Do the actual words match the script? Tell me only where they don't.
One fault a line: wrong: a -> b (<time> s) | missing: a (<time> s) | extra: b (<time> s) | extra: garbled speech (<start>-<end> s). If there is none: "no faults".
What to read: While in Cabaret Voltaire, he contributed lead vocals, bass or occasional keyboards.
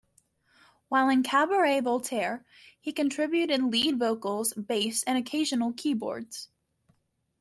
wrong: or -> and (5.0 s)